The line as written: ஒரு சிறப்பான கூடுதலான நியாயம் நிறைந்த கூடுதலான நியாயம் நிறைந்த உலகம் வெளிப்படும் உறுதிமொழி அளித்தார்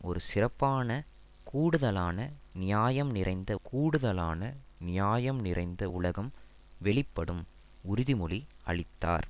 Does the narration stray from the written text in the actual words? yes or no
no